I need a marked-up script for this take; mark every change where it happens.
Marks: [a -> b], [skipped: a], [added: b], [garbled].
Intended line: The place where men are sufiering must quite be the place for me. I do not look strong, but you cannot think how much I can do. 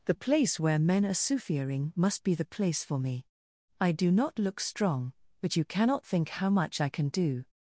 The place where men are sufiering must [skipped: quite] be the place for me. I do not look strong, but you cannot think how much I can do.